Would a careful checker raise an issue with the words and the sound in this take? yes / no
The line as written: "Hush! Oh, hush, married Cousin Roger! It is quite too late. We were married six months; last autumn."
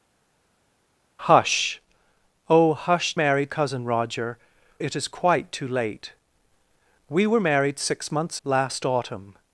no